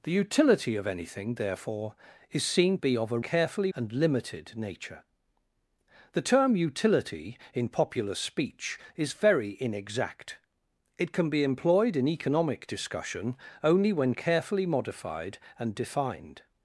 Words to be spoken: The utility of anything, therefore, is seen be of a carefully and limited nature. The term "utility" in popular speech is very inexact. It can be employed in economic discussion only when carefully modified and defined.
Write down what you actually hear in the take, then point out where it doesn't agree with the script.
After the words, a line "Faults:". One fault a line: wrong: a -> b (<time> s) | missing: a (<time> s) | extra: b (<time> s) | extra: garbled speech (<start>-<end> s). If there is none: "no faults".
The utility of anything, therefore, is seen be of a carefully and limited nature. The term "utility" in popular speech is very inexact. It can be employed in economic discussion only when carefully modified and defined.
Faults:
no faults